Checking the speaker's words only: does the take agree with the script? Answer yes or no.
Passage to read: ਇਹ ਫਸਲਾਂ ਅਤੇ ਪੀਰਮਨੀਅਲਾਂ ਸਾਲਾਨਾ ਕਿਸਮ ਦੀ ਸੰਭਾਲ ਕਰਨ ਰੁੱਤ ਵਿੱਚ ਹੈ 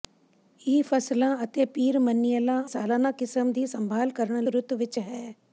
yes